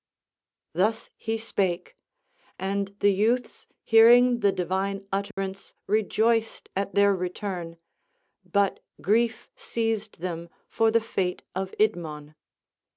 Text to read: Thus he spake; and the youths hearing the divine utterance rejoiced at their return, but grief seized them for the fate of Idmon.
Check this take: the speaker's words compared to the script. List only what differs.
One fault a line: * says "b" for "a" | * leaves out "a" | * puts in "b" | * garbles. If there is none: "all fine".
all fine